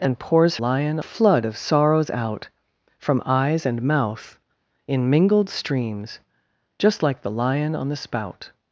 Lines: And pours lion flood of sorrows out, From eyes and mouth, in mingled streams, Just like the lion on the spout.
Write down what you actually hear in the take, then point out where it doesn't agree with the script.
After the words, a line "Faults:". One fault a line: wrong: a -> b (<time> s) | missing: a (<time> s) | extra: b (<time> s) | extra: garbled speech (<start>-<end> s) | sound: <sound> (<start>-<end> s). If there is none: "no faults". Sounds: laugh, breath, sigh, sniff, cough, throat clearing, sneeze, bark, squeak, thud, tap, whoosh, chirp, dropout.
And pours lion flood of sorrows out, From eyes and mouth, in mingled streams, Just like the lion on the spout.
Faults:
no faults